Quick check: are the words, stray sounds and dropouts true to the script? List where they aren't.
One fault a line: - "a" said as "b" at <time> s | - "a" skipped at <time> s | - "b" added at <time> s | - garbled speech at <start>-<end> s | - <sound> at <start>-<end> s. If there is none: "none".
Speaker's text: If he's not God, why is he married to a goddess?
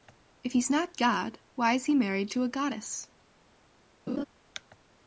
- laugh at 4.1-4.2 s